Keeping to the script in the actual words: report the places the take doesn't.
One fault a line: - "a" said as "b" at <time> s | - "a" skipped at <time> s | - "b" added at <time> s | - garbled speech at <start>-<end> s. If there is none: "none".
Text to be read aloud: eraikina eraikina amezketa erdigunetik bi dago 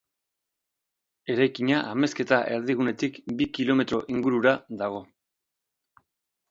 - "eraikina" skipped at 1.8 s
- "kilometro ingurura" added at 3.6 s